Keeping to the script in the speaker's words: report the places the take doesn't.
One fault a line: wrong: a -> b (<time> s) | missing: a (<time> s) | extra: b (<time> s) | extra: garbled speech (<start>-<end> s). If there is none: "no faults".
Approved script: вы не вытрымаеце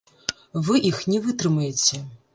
extra: іх (0.9 s)